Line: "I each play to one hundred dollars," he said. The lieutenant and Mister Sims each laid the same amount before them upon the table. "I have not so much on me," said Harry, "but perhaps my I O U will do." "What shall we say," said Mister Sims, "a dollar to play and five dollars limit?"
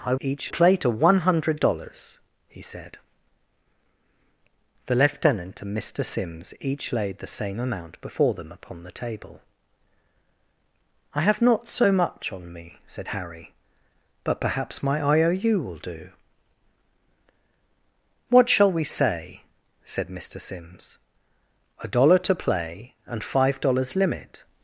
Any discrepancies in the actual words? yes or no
no